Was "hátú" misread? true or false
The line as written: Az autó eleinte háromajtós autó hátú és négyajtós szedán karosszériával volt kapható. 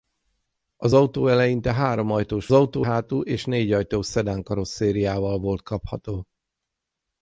false